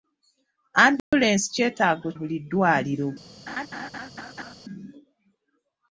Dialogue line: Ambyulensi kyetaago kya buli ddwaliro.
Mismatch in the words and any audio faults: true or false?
true